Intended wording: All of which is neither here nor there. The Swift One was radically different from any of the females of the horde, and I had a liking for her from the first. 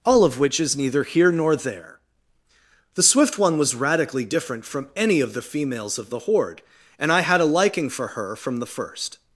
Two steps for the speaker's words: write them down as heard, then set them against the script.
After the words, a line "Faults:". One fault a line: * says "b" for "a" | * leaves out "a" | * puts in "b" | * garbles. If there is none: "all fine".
All of which is neither here nor there. The Swift One was radically different from any of the females of the horde, and I had a liking for her from the first.
Faults:
all fine